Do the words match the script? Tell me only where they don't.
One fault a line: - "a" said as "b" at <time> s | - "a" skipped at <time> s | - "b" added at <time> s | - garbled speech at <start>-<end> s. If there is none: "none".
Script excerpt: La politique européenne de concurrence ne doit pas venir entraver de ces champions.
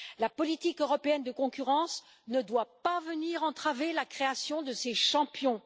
- "la création" added at 3.9 s